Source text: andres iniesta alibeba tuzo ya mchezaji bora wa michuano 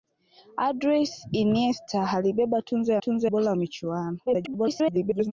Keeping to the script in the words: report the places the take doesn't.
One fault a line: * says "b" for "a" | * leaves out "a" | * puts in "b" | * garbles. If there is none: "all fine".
* says "tuzo" for "mchezaji"
* garbles